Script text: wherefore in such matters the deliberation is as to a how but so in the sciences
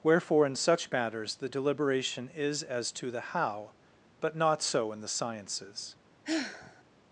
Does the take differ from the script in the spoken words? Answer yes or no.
yes